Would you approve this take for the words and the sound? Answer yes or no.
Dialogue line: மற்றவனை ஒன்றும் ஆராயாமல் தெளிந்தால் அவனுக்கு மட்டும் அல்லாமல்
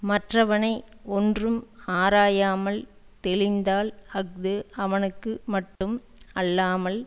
no